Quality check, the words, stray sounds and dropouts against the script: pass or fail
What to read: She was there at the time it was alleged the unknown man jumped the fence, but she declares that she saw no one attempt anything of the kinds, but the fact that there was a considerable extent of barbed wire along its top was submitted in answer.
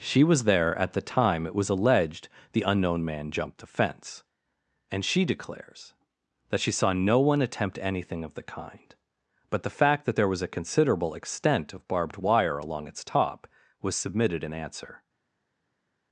fail